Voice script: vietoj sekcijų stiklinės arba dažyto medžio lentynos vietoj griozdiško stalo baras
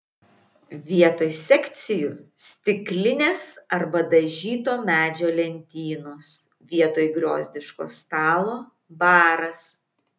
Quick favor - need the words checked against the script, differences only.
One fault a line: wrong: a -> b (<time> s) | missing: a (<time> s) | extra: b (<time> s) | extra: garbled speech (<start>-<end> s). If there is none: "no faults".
no faults